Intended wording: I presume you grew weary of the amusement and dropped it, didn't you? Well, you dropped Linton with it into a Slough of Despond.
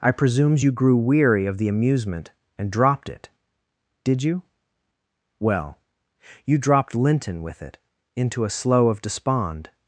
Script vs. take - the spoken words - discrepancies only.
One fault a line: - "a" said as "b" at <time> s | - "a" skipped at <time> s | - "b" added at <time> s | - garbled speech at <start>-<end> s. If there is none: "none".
- "presume" said as "presumes" at 0.1 s
- "didn't" said as "did" at 4.0 s